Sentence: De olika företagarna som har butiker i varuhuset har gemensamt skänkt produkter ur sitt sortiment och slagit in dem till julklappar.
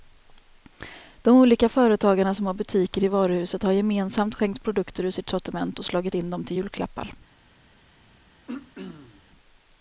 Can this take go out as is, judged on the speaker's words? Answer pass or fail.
pass